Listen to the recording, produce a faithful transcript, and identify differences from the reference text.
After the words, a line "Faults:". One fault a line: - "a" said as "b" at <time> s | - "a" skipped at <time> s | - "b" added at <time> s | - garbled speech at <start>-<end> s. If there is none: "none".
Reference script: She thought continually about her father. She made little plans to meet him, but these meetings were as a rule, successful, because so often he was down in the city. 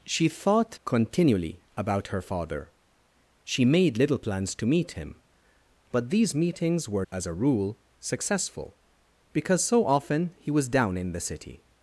She thought continually about her father. She made little plans to meet him, but these meetings were as a rule, successful, because so often he was down in the city.
Faults:
none